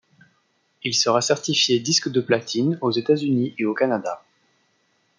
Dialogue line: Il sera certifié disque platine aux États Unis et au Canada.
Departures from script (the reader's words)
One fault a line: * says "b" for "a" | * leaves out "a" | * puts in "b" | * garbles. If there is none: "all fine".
* puts in "de"